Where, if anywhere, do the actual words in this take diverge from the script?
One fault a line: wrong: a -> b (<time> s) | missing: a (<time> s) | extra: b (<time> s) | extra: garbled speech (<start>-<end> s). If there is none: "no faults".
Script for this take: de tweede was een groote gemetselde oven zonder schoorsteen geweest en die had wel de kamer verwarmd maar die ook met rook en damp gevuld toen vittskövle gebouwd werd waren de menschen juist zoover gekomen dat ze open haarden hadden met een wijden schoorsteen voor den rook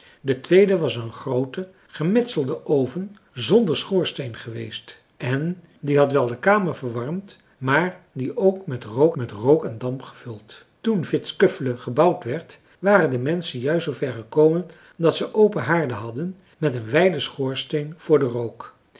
extra: met rook (9.2 s)